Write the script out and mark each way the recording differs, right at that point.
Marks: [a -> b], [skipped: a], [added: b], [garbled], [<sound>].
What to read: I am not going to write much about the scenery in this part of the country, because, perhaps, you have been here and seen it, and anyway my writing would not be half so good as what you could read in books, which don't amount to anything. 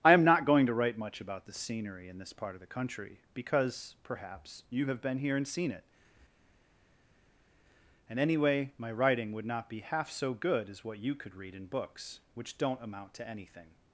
I am not going to write much about the scenery in this part of the country, because, perhaps, you have been here and seen it, and anyway my writing would not be half so good as what you could read in books, which don't amount to anything.